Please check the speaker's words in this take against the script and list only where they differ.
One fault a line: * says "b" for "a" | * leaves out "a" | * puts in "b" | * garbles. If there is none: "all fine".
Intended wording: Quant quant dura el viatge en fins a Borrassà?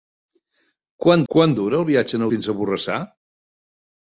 all fine